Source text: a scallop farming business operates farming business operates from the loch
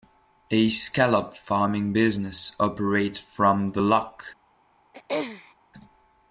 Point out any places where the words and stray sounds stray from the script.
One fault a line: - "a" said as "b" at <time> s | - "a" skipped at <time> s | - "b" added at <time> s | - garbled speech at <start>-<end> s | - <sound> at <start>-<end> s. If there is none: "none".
- "farming business operates" skipped at 3.2 s
- throat clearing at 4.9-5.5 s